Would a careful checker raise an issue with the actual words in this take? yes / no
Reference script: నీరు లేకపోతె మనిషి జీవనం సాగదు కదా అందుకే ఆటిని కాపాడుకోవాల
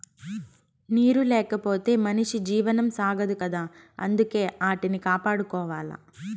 no